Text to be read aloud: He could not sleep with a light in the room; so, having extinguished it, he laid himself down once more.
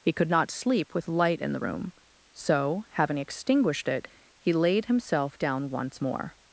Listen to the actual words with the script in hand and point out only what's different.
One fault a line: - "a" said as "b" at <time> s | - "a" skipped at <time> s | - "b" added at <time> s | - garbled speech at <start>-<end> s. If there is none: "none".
- "a" skipped at 1.1 s